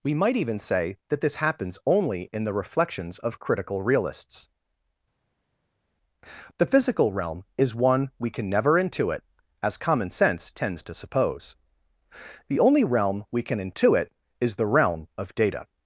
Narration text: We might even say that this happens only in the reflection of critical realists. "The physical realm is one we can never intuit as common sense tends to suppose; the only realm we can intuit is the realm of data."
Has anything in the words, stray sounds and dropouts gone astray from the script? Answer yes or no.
yes